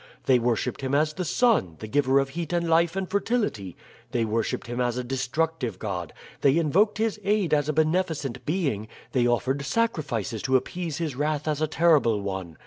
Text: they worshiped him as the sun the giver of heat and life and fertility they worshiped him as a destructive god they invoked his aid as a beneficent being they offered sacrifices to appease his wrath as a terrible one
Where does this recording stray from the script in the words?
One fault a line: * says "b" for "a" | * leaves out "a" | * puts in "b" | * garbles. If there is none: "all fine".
all fine